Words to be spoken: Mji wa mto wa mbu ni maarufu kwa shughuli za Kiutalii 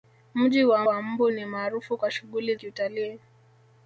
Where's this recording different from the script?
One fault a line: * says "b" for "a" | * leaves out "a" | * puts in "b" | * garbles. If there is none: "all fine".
* leaves out "mto"
* leaves out "za"